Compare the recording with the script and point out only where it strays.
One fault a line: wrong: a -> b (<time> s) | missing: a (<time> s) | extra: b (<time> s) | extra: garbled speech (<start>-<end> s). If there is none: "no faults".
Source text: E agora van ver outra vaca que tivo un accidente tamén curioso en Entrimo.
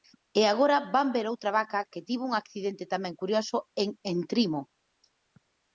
no faults